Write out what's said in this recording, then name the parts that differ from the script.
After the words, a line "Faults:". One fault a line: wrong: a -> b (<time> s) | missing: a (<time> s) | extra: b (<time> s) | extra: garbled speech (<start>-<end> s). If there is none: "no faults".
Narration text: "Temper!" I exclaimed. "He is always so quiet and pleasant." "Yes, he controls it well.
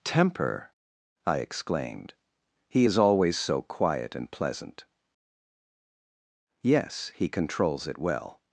"Temper!" I exclaimed. "He is always so quiet and pleasant." "Yes, he controls it well.
Faults:
no faults